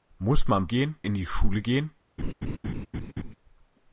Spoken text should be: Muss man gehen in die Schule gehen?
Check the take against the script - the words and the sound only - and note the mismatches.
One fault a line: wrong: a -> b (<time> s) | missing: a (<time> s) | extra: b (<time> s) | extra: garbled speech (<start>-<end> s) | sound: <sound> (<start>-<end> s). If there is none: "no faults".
sound: laugh (2.2-3.4 s)